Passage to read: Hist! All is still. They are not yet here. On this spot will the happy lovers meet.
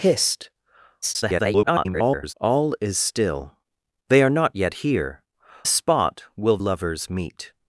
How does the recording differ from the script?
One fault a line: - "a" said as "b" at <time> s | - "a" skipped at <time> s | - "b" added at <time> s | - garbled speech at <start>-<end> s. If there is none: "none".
- garbled speech at 1.0-2.3 s
- "On this" skipped at 5.2 s
- "the happy" skipped at 6.6 s